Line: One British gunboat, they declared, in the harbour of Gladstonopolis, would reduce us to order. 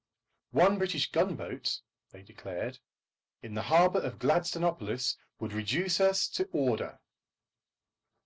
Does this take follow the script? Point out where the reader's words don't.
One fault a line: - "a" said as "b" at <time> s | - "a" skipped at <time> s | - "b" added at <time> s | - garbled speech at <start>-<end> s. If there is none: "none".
none